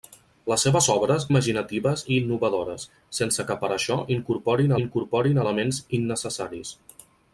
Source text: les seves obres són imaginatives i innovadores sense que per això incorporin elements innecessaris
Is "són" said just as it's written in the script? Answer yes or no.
no